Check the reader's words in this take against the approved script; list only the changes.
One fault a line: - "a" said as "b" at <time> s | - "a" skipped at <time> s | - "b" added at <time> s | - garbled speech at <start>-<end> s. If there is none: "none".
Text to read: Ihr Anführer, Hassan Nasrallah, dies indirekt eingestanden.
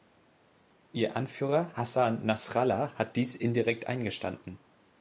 - "hat" added at 2.9 s